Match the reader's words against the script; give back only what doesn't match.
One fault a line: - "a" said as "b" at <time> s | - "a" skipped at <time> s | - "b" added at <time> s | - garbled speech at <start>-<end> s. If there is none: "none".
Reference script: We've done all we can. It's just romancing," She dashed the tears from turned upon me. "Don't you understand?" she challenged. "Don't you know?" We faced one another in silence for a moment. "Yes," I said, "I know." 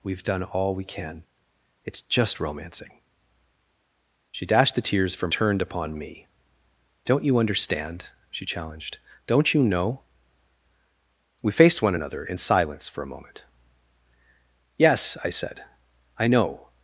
none